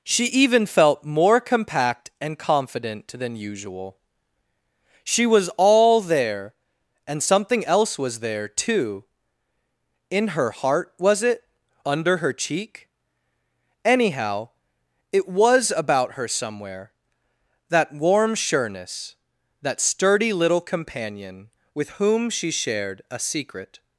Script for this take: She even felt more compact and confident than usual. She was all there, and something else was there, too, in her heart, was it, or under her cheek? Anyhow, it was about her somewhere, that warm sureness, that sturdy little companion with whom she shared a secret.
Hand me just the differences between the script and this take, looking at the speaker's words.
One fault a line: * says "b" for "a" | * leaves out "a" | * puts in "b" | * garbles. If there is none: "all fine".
* leaves out "or"